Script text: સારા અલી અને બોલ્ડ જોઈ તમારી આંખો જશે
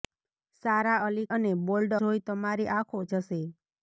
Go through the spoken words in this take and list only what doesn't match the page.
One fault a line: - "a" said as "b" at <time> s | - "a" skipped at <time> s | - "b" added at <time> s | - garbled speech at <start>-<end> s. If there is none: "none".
none